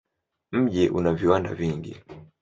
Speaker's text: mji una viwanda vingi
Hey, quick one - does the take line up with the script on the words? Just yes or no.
yes